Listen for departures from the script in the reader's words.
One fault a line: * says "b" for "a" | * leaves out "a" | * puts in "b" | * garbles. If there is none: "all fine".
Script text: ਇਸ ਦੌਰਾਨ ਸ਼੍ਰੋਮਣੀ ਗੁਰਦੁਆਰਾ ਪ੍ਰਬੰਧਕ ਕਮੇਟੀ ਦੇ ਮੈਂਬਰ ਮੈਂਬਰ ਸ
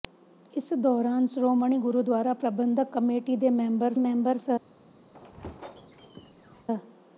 all fine